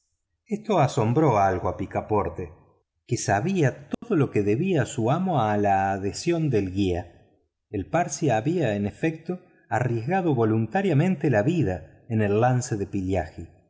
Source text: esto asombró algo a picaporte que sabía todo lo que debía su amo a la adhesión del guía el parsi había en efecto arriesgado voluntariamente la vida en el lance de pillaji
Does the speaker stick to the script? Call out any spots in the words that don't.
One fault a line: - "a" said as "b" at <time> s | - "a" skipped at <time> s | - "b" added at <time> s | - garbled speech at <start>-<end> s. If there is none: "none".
none